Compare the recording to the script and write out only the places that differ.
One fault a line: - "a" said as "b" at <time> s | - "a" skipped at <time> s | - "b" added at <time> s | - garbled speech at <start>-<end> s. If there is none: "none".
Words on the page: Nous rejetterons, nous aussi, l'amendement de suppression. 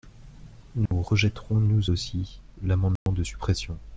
none